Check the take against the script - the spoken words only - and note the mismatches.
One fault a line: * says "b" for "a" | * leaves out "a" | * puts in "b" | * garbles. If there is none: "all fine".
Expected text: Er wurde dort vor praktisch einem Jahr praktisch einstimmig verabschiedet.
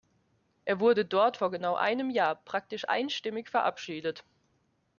* says "genau" for "praktisch"